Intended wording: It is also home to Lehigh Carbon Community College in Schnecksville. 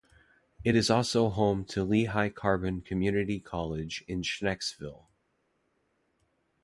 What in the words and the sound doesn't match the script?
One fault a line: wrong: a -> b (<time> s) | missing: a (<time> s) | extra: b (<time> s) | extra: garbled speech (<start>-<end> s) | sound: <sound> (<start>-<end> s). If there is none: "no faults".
no faults